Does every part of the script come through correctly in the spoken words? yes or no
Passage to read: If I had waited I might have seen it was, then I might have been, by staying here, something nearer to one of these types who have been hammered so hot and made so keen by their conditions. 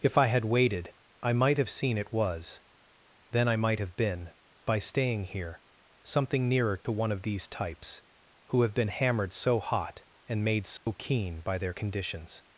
yes